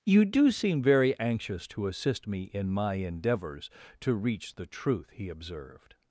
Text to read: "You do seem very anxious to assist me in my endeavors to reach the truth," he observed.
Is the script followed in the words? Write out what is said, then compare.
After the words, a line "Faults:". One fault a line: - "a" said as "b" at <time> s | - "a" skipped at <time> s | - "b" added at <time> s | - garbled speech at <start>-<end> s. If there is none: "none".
"You do seem very anxious to assist me in my endeavors to reach the truth," he observed.
Faults:
none